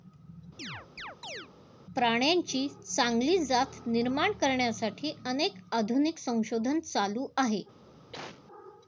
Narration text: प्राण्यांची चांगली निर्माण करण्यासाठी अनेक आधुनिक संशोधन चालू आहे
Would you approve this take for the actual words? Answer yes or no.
no